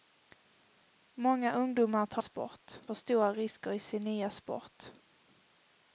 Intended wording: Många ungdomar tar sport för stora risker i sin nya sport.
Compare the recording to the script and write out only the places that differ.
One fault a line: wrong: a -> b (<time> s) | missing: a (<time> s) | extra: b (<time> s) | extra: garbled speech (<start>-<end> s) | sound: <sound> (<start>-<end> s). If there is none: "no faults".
no faults